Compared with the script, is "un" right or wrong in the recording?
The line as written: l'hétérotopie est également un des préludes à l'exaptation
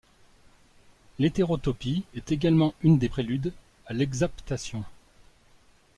wrong